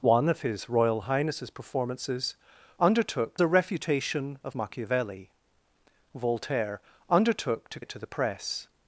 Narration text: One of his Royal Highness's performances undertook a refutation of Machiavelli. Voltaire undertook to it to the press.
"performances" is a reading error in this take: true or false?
false